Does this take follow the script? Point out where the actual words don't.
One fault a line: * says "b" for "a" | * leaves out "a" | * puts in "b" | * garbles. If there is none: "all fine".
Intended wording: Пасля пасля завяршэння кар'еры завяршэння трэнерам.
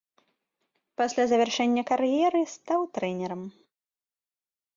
* leaves out "пасля"
* says "стаў" for "завяршэння"